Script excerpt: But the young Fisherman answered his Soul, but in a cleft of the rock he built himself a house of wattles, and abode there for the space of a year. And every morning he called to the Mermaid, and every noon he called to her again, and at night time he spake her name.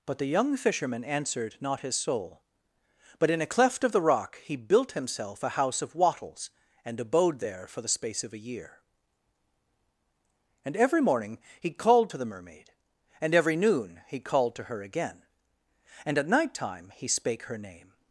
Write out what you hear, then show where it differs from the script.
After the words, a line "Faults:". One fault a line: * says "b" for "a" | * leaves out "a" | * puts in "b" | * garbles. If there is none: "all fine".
But the young Fisherman answered not his Soul, but in a cleft of the rock he built himself a house of wattles, and abode there for the space of a year. And every morning he called to the Mermaid, and every noon he called to her again, and at night time he spake her name.
Faults:
* puts in "not"